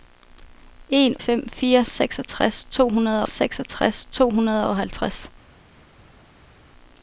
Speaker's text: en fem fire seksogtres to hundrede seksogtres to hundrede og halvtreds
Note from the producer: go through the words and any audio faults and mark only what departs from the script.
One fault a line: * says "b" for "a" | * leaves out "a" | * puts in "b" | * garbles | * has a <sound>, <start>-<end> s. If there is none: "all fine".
all fine